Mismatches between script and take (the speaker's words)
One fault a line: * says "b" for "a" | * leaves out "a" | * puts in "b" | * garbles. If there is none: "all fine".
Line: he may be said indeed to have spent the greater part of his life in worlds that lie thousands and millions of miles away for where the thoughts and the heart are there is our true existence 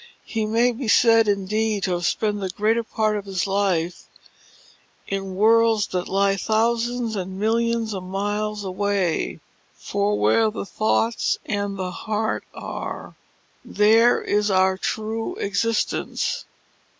all fine